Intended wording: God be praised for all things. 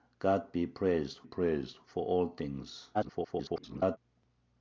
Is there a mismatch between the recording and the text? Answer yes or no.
yes